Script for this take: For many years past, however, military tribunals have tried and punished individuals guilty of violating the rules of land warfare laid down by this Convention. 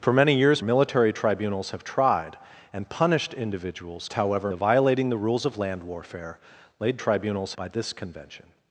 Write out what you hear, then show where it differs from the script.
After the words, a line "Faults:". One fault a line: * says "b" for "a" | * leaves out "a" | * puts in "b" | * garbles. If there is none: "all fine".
For many years military tribunals have tried and punished individuals however of violating the rules of land warfare laid tribunals by this Convention.
Faults:
* leaves out "past however"
* says "however" for "guilty"
* says "tribunals" for "down"